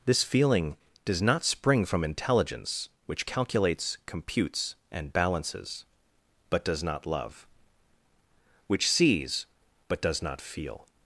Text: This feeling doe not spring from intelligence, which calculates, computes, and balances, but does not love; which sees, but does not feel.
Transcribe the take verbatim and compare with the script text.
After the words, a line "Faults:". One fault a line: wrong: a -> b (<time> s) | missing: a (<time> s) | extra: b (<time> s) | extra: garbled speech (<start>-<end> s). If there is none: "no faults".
This feeling does not spring from intelligence, which calculates, computes, and balances, but does not love; which sees, but does not feel.
Faults:
wrong: doe -> does (1.1 s)